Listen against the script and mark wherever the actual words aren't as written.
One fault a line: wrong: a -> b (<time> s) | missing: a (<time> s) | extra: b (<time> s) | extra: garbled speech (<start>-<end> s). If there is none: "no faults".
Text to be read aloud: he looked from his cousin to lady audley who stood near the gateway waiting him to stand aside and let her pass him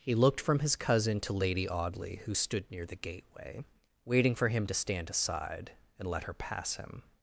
extra: for (4.3 s)